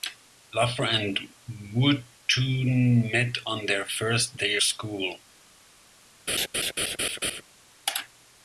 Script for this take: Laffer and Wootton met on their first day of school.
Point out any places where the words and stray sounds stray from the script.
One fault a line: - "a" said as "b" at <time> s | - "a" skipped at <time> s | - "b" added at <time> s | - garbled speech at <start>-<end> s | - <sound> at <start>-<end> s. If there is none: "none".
- "of" skipped at 4.6 s
- laugh at 6.3-7.4 s